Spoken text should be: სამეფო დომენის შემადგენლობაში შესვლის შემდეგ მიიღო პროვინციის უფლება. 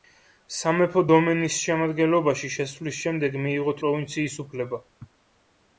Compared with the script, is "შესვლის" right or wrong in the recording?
right